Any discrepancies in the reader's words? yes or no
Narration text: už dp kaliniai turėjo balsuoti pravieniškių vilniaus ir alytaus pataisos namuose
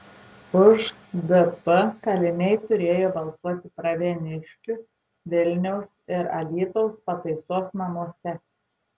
no